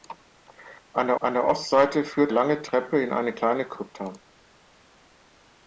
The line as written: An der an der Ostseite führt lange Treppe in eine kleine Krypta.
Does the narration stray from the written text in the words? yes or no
no